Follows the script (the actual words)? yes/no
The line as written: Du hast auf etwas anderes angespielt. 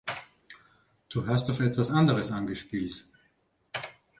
yes